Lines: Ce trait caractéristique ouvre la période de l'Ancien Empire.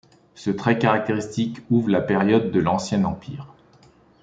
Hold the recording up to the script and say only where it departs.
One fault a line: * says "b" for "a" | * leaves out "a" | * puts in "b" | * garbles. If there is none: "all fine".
all fine